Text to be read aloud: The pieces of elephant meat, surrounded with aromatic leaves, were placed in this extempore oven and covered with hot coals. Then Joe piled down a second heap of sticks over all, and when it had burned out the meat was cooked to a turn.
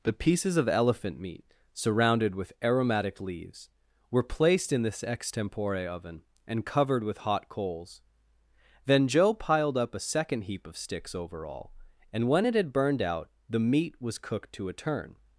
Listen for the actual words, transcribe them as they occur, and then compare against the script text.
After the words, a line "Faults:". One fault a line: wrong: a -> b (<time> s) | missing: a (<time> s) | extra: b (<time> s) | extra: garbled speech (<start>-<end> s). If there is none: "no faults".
The pieces of elephant meat, surrounded with aromatic leaves, were placed in this extempore oven and covered with hot coals. Then Joe piled up a second heap of sticks over all, and when it had burned out the meat was cooked to a turn.
Faults:
wrong: down -> up (9.8 s)